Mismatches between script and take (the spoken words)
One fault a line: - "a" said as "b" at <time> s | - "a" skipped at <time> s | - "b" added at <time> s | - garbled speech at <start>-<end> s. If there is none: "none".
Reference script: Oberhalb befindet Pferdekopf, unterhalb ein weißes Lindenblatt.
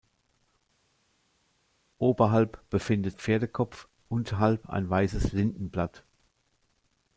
none